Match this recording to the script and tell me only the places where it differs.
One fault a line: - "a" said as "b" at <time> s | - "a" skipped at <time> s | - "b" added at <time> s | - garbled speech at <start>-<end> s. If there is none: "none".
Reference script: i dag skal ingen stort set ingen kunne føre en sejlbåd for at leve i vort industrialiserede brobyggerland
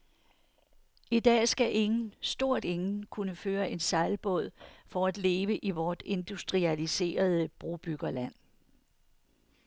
- "set" skipped at 2.6 s